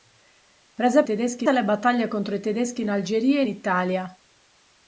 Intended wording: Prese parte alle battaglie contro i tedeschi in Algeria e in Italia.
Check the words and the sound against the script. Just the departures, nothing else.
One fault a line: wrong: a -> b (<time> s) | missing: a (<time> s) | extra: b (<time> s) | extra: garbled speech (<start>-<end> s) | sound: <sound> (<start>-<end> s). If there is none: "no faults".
wrong: parte -> tedeschi (1.0 s)